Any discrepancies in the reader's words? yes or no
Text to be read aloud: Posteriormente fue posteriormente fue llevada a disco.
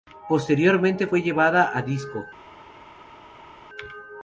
yes